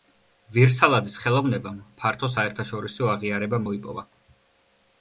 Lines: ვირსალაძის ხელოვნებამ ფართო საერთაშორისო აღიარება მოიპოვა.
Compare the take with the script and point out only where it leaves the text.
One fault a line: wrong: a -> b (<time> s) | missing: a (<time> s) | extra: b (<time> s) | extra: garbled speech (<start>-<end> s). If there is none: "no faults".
no faults